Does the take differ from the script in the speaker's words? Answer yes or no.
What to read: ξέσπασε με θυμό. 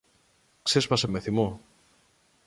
no